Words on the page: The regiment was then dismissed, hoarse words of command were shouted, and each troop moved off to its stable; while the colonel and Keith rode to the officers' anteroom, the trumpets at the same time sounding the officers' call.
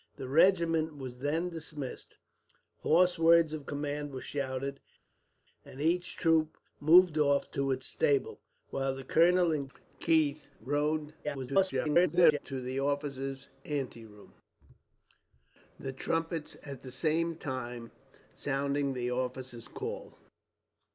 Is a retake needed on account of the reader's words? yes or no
yes